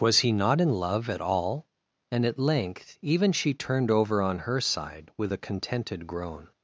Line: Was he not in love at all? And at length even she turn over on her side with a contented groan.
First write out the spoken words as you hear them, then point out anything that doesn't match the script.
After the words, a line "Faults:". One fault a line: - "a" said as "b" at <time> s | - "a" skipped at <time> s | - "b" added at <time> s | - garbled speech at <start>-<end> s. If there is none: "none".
Was he not in love at all? And at length even she turned over on her side with a contented groan.
Faults:
- "turn" said as "turned" at 3.5 s